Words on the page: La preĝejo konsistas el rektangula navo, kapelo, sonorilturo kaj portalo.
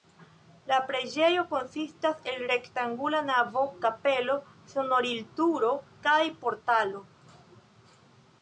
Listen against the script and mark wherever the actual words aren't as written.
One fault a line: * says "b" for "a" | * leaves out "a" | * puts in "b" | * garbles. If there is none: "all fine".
all fine